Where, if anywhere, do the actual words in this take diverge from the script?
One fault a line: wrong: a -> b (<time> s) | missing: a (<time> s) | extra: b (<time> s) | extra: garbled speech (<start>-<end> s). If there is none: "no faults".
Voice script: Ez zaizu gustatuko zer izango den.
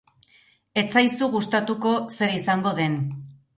no faults